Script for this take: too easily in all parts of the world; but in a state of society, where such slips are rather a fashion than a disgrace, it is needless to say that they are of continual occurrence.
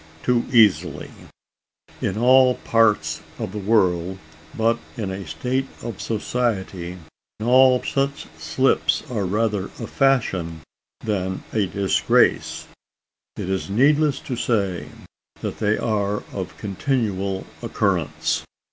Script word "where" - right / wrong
wrong